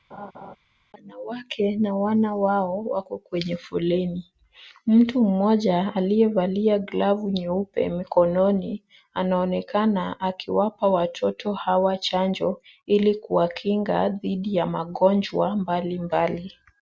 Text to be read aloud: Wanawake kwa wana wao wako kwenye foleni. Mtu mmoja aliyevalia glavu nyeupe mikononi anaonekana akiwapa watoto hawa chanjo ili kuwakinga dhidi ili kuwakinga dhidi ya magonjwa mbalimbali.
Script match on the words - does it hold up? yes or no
no